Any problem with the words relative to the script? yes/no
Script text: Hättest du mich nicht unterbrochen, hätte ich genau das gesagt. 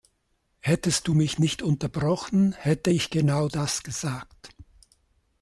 no